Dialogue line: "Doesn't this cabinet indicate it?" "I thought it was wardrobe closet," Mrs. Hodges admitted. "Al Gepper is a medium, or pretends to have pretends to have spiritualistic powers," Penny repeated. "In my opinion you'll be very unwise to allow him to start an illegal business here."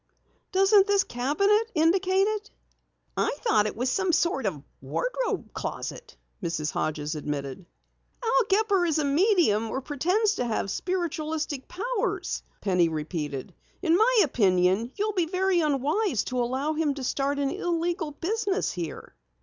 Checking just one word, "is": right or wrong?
right